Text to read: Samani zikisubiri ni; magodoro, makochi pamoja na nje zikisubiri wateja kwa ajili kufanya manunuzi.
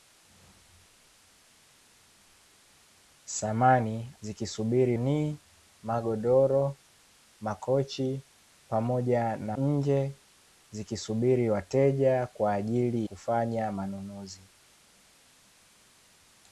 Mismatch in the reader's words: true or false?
false